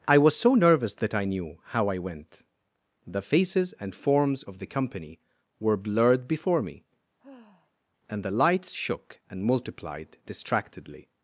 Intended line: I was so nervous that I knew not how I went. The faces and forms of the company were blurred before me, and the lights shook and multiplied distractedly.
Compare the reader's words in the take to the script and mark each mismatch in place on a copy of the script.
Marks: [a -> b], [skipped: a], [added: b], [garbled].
I was so nervous that I knew [skipped: not] how I went. The faces and forms of the company were blurred before me, and the lights shook and multiplied distractedly.